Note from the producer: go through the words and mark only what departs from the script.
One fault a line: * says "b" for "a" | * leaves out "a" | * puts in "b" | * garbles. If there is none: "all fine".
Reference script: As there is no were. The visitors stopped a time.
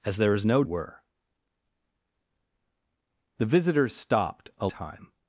all fine